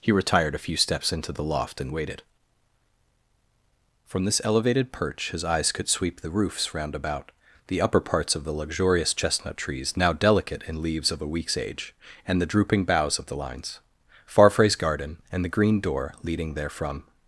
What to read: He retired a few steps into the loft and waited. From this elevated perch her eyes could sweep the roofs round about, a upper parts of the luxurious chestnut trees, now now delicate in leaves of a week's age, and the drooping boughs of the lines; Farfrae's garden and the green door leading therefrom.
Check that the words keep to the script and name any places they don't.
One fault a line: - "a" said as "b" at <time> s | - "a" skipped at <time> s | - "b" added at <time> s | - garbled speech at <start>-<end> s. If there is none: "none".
- "her" said as "his" at 5.3 s
- "a" said as "the" at 7.7 s
- "now" skipped at 10.1 s